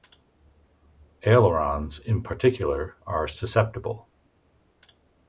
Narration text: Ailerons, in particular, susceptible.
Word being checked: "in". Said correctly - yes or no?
yes